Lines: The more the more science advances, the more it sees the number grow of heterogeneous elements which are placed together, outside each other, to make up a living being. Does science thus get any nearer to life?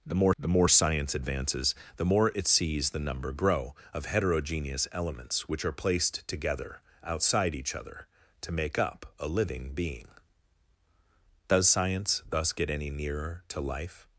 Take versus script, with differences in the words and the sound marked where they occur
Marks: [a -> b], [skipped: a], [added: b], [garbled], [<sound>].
The more the more science advances, the more it sees the number grow of heterogeneous elements which are placed together, outside each other, to make up a living being. Does science thus get any nearer to life?